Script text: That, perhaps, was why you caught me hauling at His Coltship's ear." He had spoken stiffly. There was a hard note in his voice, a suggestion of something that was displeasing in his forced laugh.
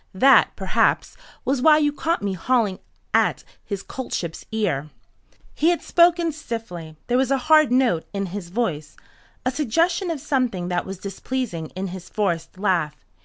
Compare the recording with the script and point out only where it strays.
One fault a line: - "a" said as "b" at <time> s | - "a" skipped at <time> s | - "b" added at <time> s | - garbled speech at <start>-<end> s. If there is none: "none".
none